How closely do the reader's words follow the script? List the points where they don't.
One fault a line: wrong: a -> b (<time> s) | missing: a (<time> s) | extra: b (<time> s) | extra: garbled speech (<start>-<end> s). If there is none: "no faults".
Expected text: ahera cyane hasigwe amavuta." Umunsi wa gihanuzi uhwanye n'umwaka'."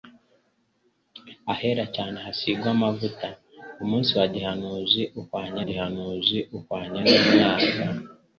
extra: gihanuzi uhwanye (5.7 s)